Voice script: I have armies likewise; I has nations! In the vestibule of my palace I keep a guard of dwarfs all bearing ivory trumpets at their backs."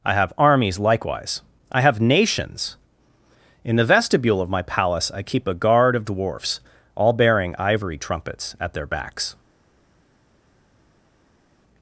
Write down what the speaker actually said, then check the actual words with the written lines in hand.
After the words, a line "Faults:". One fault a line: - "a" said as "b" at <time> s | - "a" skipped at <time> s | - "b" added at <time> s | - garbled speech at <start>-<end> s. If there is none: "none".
I have armies likewise; I have nations! In the vestibule of my palace I keep a guard of dwarfs all bearing ivory trumpets at their backs."
Faults:
- "has" said as "have" at 1.8 s